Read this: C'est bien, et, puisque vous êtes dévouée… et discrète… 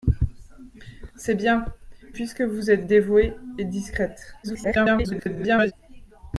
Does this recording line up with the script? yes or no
no